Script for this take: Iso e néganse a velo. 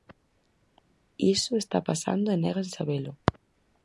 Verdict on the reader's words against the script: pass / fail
fail